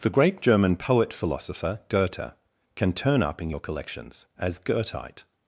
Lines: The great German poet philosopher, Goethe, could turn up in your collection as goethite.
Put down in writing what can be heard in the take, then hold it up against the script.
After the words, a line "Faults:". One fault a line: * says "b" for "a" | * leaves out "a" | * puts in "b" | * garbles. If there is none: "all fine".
The great German poet philosopher, Goethe, can turn up in your collections as goethite.
Faults:
* says "can" for "could"
* says "collections" for "collection"